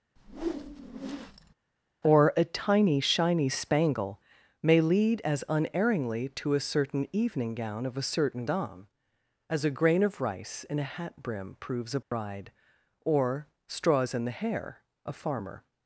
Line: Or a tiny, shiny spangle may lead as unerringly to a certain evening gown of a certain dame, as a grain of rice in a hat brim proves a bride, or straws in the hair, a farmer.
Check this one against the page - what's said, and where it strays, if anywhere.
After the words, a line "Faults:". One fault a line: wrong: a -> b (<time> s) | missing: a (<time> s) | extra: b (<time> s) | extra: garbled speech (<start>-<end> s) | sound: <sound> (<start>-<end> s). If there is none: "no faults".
Or a tiny, shiny spangle may lead as unerringly to a certain evening gown of a certain dame, as a grain of rice in a hat brim proves a bride, or straws in the hair, a farmer.
Faults:
sound: whoosh (0.2-1.5 s)
sound: dropout (12.0-12.1 s)